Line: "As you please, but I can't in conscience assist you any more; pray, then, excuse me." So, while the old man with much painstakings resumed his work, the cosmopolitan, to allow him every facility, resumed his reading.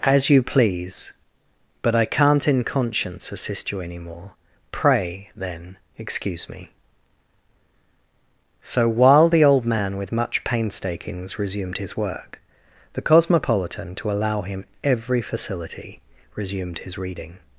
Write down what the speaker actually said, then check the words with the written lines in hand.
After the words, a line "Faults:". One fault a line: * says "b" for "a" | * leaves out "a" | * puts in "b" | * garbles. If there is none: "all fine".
"As you please, but I can't in conscience assist you any more; pray, then, excuse me." So, while the old man with much painstakings resumed his work, the cosmopolitan, to allow him every facility, resumed his reading.
Faults:
all fine